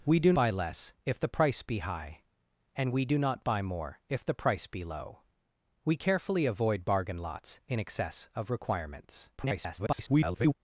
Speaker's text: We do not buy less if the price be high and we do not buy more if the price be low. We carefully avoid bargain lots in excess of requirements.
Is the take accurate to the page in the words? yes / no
no